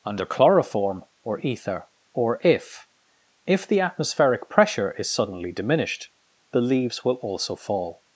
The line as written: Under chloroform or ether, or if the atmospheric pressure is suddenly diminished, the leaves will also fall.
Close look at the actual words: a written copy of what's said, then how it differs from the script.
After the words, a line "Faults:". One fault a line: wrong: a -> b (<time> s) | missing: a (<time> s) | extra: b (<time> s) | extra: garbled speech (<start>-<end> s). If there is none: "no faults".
Under chloroform or ether, or if if the atmospheric pressure is suddenly diminished, the leaves will also fall.
Faults:
extra: if (3.5 s)